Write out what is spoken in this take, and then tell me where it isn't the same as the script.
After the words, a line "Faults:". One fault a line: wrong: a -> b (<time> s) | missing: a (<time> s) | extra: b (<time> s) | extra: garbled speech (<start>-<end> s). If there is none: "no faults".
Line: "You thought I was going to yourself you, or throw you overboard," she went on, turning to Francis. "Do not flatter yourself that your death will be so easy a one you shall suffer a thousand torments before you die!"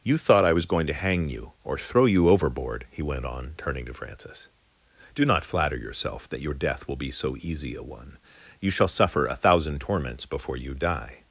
"You thought I was going to hang you, or throw you overboard," he went on, turning to Francis. "Do not flatter yourself that your death will be so easy a one you shall suffer a thousand torments before you die!"
Faults:
wrong: yourself -> hang (0.9 s)
wrong: she -> he (2.9 s)